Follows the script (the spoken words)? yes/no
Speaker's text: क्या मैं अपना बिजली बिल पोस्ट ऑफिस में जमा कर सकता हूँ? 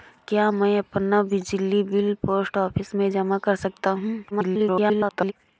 no